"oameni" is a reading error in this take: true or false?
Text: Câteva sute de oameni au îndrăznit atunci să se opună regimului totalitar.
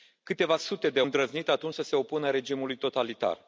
true